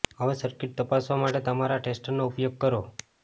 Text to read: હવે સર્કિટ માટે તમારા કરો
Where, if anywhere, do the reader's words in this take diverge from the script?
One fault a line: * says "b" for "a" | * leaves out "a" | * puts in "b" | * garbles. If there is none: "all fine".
* puts in "તપાસવા"
* puts in "ટેસ્ટરનો ઉપયોગ"